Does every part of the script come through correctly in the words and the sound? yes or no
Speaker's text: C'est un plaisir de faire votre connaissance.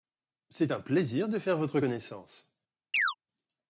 no